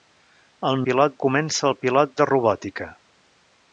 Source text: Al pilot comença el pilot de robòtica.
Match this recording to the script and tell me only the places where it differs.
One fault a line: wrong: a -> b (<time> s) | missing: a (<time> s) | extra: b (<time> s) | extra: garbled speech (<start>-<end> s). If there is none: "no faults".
no faults